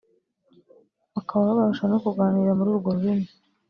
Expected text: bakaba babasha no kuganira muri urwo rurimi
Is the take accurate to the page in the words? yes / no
yes